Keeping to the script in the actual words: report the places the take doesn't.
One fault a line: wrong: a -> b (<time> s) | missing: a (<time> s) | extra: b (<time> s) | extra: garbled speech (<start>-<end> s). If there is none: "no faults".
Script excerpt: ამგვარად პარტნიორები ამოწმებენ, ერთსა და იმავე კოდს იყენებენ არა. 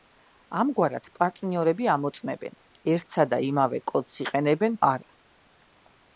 no faults